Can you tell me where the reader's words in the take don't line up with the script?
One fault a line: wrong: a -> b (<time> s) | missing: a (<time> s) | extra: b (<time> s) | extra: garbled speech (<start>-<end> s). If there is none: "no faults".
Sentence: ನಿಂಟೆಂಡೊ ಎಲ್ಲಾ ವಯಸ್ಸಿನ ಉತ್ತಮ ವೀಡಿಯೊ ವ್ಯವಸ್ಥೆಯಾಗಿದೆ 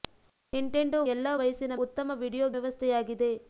no faults